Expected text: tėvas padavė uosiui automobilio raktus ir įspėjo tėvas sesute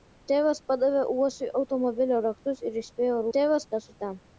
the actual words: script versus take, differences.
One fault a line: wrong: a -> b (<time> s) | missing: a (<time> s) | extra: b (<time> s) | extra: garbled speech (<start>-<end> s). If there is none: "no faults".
no faults